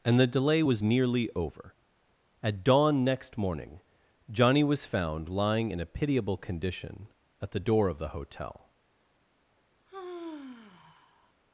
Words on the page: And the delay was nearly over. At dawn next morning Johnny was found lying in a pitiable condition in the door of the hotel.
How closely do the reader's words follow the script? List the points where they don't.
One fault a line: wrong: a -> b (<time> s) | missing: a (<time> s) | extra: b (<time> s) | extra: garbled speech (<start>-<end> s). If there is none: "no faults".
wrong: in -> at (7.4 s)